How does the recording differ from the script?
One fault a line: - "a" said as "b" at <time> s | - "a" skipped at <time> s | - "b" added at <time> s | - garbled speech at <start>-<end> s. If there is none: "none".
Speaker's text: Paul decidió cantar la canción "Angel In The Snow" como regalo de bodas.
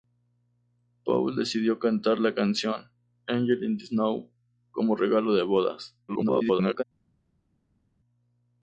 - garbled speech at 6.1-6.8 s